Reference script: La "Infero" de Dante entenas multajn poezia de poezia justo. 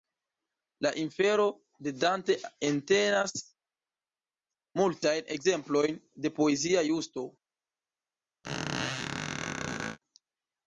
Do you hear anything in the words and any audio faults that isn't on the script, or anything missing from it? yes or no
yes